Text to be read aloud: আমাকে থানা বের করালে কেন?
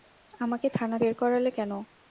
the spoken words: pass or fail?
pass